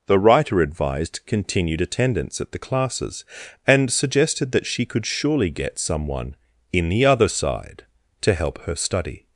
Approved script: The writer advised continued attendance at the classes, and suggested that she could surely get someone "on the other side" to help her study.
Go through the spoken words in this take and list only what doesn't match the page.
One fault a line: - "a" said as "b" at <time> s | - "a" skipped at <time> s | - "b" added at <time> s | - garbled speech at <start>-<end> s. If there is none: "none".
- "on" said as "in" at 6.7 s